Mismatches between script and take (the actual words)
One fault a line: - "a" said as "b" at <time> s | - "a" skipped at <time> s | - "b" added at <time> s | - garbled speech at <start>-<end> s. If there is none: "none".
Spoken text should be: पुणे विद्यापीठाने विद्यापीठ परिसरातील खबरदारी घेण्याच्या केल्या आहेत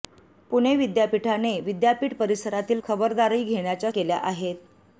none